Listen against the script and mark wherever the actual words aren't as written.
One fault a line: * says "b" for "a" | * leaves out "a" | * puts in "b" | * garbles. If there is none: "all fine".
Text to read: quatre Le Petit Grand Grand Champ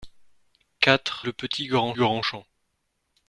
all fine